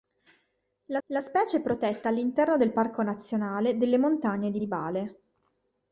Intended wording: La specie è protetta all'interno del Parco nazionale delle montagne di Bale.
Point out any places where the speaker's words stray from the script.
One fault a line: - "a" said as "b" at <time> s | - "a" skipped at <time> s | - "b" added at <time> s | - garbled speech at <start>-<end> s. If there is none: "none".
- "la" added at 1.1 s
- "di" added at 4.6 s